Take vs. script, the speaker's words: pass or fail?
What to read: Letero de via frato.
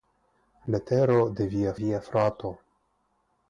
fail